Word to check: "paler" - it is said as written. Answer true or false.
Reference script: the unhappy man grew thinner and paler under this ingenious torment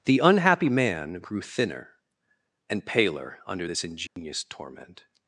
true